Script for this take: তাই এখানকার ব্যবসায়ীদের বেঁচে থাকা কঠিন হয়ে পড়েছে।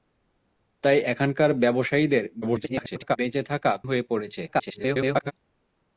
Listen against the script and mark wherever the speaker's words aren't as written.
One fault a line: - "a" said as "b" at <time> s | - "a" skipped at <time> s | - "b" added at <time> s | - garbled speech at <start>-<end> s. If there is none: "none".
- garbled speech at 2.4-3.2 s
- "কঠিন" skipped at 3.7 s
- garbled speech at 4.5-5.3 s